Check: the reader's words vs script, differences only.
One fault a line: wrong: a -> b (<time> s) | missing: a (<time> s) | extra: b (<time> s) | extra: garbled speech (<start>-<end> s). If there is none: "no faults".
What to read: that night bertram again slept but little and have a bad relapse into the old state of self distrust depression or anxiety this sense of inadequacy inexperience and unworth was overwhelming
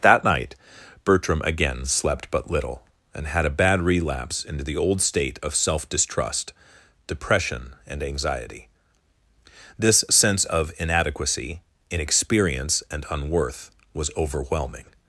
wrong: have -> had (3.3 s)
wrong: or -> and (7.9 s)